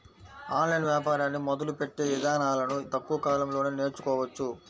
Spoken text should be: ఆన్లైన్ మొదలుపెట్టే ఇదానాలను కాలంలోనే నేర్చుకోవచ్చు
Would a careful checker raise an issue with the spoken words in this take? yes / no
yes